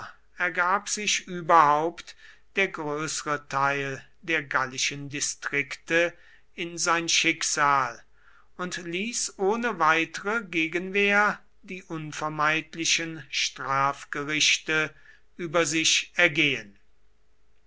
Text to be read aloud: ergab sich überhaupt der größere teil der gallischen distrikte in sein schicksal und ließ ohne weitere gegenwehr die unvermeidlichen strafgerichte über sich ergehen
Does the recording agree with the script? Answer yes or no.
yes